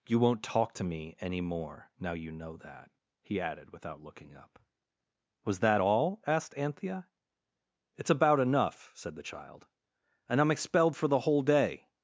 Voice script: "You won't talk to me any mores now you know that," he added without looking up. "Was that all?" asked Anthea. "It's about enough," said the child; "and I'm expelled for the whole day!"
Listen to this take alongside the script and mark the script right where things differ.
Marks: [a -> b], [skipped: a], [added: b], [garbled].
"You won't talk to me any [mores -> more] now you know that," he added without looking up. "Was that all?" asked Anthea. "It's about enough," said the child; "and I'm expelled for the whole day!"